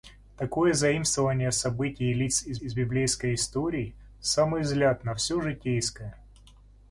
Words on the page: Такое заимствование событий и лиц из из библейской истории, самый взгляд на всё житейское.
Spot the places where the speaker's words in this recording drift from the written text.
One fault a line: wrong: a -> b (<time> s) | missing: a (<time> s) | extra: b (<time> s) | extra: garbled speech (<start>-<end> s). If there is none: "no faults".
no faults